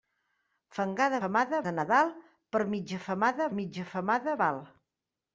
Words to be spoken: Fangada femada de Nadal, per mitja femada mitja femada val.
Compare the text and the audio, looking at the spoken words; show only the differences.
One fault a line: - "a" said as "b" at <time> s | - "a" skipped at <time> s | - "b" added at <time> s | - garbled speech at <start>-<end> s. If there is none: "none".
none